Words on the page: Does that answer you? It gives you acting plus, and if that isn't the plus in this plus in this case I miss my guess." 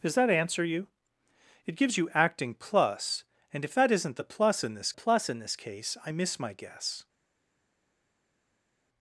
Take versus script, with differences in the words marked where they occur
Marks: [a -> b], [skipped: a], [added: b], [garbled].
Does that answer you? It gives you acting plus, and if that isn't the plus in this plus in this case I miss my guess."